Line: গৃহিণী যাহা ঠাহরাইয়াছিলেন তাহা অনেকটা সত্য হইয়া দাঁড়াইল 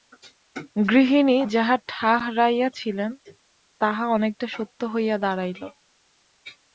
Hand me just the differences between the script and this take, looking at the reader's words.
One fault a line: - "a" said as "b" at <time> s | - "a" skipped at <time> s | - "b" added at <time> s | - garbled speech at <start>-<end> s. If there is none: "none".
none